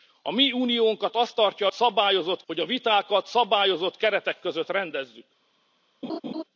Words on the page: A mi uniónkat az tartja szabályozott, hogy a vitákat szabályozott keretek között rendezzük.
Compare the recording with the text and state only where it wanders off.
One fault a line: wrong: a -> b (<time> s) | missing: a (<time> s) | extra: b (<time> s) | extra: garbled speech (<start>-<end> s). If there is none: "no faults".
no faults